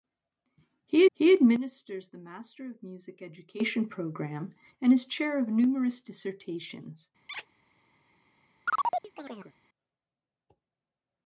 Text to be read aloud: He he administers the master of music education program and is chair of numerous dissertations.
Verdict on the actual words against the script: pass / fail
pass